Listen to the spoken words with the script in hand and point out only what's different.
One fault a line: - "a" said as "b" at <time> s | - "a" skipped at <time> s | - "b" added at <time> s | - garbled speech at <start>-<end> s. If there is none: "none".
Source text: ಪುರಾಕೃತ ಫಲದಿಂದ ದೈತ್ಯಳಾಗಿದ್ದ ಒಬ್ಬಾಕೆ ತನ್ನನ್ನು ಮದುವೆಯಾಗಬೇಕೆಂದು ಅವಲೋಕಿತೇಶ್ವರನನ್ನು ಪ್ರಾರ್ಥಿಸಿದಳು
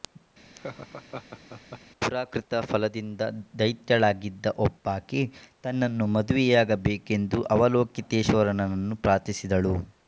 none